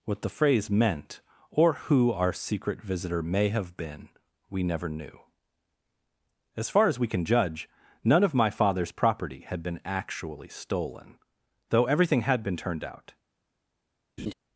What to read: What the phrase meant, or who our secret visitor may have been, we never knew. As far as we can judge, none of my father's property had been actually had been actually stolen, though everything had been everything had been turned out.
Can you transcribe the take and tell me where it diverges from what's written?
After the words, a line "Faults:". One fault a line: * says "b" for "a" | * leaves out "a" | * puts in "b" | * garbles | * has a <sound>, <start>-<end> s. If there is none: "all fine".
What the phrase meant, or who our secret visitor may have been, we never knew. As far as we can judge, none of my father's property had been actually stolen, though everything had been turned out.
Faults:
* leaves out "had been actually"
* leaves out "everything had been"
* has a laugh, 14.2-14.3 s